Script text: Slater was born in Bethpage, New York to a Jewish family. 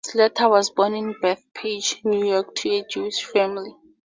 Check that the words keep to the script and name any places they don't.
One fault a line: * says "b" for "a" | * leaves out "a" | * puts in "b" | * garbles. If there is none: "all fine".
all fine